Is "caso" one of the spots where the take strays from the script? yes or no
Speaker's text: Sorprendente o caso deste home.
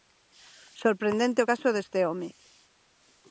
no